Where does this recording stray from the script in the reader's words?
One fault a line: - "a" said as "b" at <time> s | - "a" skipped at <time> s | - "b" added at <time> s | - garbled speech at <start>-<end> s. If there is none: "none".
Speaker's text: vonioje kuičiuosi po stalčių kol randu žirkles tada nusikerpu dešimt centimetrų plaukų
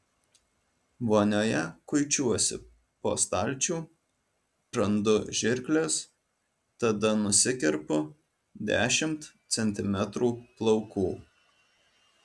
- "kol" skipped at 3.8 s